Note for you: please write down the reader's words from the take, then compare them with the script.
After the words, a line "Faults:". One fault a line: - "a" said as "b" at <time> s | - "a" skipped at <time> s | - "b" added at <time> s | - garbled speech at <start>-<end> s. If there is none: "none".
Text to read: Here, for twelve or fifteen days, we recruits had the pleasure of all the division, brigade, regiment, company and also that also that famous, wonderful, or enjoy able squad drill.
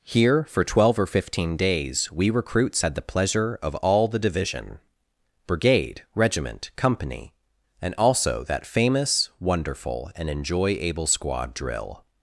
Here, for twelve or fifteen days, we recruits had the pleasure of all the division, brigade, regiment, company and also that famous, wonderful, and enjoy able squad drill.
Faults:
- "also that" skipped at 8.7 s
- "or" said as "and" at 10.2 s